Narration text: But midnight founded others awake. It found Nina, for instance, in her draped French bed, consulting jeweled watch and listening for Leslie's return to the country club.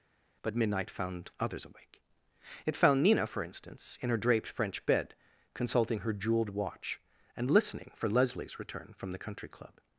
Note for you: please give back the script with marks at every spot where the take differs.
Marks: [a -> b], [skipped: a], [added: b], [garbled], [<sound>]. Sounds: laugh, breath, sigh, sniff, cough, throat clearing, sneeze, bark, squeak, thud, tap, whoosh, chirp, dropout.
But midnight [founded -> found] others awake. It found Nina, for instance, in her draped French bed, consulting [added: her] jeweled watch and listening for Leslie's return [to -> from] the country club.